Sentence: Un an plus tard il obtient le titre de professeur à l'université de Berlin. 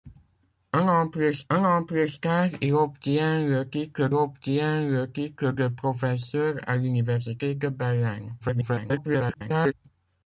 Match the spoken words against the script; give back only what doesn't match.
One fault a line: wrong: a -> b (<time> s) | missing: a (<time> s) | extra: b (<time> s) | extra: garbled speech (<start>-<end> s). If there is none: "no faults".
extra: un an plus (1.5 s)
extra: obtient le titre (4.1 s)
extra: garbled speech (8.4-9.7 s)